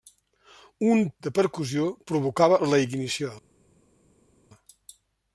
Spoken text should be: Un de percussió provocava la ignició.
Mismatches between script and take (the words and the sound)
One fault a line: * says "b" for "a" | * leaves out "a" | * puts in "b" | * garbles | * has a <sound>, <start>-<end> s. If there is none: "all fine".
all fine